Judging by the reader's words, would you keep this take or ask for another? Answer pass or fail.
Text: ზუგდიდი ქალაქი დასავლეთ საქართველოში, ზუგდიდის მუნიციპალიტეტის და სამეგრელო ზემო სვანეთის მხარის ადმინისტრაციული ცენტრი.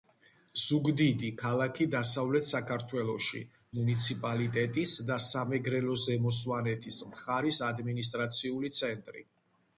fail